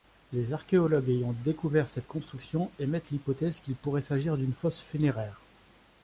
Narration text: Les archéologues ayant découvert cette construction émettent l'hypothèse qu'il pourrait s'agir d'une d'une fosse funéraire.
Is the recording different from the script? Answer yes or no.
yes